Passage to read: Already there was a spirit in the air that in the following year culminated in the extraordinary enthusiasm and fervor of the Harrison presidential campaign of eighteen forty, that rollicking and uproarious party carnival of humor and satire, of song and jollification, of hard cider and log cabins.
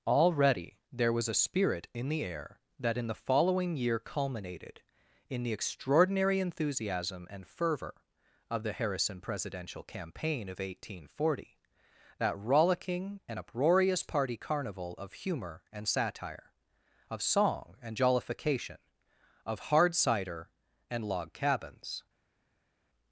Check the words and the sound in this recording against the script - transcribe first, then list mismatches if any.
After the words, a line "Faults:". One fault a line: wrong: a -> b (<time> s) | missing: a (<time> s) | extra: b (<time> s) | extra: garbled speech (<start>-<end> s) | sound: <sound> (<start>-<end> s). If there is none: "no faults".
Already there was a spirit in the air that in the following year culminated in the extraordinary enthusiasm and fervor of the Harrison presidential campaign of eighteen forty, that rollicking and uproarious party carnival of humor and satire, of song and jollification, of hard cider and log cabins.
Faults:
no faults